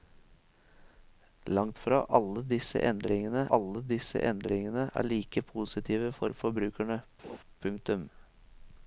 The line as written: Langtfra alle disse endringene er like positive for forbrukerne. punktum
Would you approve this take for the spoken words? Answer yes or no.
no